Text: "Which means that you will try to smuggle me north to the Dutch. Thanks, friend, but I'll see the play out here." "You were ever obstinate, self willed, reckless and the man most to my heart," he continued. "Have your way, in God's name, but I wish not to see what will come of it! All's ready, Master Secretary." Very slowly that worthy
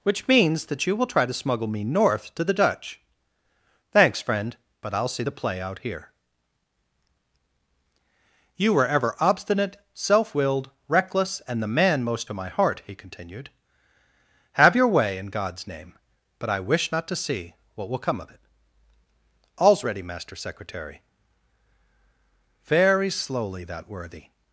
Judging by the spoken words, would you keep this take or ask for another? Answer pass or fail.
pass